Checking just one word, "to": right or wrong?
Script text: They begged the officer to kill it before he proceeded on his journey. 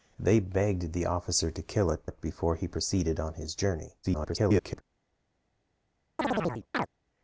right